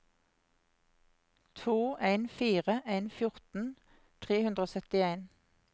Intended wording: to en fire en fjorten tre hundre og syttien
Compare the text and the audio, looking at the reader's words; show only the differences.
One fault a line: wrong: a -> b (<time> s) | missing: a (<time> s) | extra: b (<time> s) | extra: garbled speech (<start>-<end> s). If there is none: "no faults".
no faults